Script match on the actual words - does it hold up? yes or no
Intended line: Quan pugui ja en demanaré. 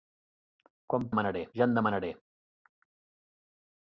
no